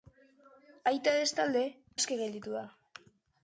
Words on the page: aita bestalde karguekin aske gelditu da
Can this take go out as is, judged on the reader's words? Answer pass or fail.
fail